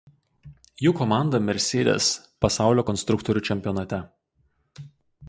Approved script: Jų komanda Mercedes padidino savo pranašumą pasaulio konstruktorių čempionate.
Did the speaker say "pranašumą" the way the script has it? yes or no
no